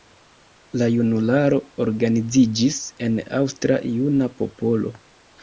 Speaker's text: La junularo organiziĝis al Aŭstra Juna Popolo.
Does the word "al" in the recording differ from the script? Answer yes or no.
yes